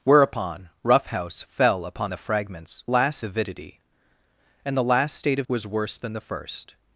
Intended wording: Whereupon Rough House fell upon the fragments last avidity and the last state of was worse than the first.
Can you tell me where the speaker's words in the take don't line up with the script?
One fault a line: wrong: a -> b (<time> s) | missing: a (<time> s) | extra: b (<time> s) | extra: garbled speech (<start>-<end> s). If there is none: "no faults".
no faults